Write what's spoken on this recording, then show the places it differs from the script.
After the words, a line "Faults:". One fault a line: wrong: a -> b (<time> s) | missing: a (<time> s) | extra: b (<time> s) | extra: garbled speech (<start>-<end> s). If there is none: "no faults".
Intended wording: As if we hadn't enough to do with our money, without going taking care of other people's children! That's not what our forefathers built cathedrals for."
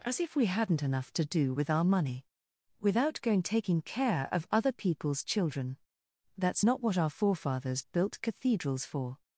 As if we hadn't enough to do with our money, without going taking care of other people's children! That's not what our forefathers built cathedrals for."
Faults:
no faults